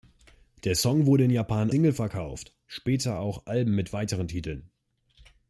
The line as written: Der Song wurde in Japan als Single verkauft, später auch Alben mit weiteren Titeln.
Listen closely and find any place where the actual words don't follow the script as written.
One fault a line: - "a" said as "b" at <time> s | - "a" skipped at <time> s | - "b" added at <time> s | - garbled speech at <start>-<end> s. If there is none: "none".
- "als" skipped at 1.7 s